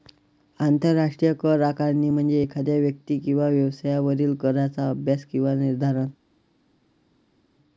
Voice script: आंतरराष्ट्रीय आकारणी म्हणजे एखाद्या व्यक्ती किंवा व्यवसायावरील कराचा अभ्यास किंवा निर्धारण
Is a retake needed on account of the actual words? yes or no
yes